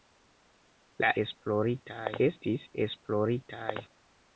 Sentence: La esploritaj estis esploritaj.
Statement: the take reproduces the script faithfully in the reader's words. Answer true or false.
true